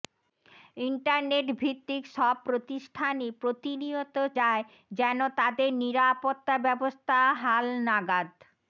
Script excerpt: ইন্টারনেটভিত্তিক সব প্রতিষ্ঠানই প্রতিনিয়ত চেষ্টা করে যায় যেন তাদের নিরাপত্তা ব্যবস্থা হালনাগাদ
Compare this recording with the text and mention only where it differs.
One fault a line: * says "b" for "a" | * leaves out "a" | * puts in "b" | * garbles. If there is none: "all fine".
* leaves out "চেষ্টা করে"